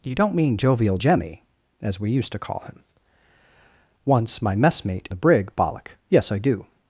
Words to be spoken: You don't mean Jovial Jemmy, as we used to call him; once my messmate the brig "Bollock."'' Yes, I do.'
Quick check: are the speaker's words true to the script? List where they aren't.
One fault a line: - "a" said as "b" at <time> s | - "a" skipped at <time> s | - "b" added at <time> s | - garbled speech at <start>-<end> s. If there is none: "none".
none